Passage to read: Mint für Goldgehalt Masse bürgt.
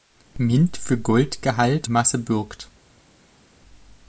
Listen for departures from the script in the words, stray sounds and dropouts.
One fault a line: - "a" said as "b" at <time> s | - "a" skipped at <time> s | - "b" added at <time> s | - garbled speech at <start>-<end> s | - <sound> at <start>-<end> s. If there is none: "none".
none